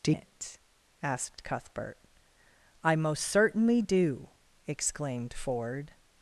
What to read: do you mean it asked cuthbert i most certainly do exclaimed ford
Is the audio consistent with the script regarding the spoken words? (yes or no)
no